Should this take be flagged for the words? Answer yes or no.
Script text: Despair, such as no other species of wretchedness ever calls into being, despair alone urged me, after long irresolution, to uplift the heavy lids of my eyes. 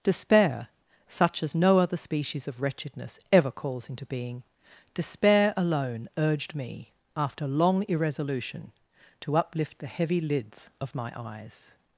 no